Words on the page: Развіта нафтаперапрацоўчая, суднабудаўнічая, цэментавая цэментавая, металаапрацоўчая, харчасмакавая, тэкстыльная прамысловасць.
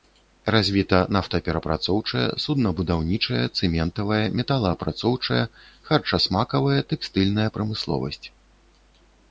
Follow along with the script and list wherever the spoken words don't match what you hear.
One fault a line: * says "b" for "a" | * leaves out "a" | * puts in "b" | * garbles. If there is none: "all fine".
* leaves out "цэментавая"